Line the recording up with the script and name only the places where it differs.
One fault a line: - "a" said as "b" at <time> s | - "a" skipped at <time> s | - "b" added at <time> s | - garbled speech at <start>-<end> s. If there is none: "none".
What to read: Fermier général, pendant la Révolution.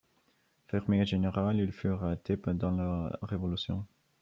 - "il fut arrêté" added at 1.6 s